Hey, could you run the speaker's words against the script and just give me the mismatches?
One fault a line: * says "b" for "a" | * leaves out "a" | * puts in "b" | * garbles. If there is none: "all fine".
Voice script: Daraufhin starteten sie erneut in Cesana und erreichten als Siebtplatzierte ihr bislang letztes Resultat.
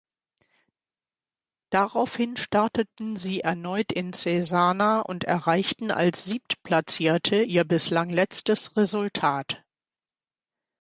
all fine